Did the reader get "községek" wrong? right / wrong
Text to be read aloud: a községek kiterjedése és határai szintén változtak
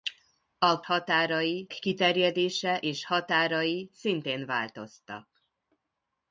wrong